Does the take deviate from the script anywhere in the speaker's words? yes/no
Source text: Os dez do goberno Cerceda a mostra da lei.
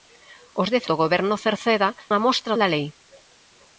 no